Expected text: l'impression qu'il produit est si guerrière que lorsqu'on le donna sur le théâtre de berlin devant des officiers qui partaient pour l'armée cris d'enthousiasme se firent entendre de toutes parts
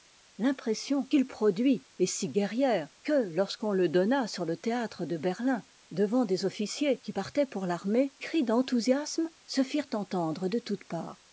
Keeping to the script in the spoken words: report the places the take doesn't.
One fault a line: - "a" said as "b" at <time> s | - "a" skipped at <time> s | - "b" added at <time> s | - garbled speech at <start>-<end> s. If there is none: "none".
none